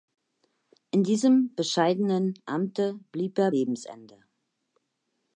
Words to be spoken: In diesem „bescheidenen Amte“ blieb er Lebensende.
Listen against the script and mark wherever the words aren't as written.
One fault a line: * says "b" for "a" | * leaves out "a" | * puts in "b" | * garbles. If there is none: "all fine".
all fine